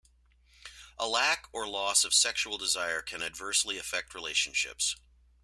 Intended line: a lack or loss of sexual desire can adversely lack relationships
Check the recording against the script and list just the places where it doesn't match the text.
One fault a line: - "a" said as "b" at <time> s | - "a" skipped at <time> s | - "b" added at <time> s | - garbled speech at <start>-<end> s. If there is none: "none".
- "lack" said as "affect" at 3.8 s